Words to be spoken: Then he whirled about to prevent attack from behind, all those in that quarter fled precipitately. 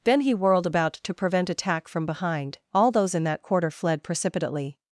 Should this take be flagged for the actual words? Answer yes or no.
no